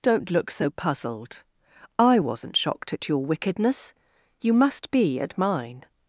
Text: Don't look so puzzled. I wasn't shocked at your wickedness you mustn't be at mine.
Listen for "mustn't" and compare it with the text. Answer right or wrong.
wrong